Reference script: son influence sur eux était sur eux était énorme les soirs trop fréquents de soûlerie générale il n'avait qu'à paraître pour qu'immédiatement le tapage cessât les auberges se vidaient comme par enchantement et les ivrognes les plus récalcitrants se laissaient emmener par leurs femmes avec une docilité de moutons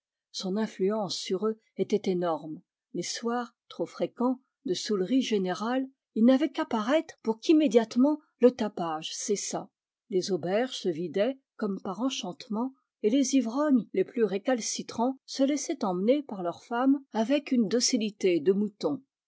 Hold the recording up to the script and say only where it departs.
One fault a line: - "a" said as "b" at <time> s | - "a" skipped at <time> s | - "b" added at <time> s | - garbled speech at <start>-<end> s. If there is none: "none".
- "sur eux était" skipped at 2.1 s